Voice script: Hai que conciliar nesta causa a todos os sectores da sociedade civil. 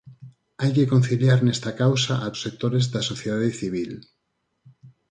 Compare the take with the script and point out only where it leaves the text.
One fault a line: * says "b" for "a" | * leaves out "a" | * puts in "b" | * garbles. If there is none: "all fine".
* leaves out "todos"